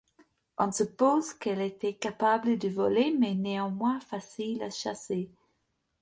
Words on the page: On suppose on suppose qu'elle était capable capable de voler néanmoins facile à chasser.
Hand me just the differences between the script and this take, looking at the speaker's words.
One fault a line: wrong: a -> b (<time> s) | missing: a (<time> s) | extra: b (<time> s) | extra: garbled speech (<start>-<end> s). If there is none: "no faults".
missing: on suppose (1.3 s)
missing: capable (2.6 s)
extra: mais (3.2 s)